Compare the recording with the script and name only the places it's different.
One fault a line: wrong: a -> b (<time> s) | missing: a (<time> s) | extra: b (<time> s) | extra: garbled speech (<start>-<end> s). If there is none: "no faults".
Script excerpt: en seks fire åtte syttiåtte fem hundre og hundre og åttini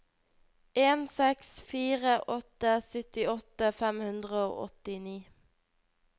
missing: hundre og (4.6 s)